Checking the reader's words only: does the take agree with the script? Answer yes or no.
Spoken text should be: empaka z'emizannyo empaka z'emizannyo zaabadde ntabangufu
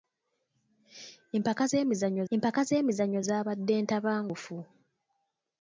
yes